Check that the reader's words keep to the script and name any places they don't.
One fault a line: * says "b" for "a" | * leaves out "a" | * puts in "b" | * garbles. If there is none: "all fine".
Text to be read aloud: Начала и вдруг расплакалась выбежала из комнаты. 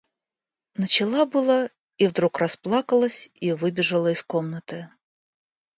* puts in "было"
* puts in "и"